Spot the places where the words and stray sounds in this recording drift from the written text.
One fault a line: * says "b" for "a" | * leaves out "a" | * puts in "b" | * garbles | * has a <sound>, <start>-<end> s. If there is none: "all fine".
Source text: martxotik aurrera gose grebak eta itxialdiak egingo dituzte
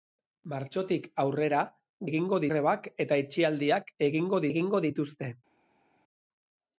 * says "egingo" for "gose"
* puts in "egingo"